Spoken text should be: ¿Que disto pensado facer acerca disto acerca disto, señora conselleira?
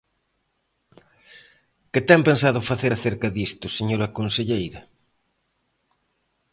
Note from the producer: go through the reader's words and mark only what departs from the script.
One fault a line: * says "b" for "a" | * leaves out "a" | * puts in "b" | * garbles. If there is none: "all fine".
* says "ten" for "disto"
* leaves out "acerca disto"